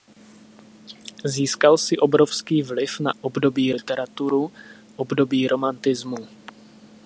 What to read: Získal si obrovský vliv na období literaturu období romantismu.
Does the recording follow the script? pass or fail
pass